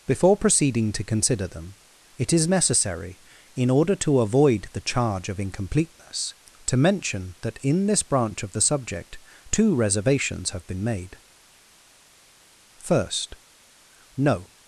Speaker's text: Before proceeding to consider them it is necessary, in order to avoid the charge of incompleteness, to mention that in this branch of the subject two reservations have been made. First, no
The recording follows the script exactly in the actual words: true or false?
true